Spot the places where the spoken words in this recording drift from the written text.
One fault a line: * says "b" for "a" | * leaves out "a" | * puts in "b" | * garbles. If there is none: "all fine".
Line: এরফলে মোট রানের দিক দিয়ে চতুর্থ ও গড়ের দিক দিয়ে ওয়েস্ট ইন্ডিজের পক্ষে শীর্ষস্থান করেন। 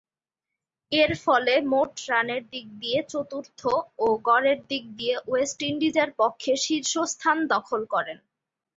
* puts in "দখল"